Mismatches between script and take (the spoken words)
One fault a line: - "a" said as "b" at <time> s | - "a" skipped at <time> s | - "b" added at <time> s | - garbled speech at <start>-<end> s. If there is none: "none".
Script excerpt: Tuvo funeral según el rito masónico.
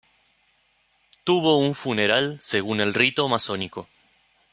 - "un" added at 1.6 s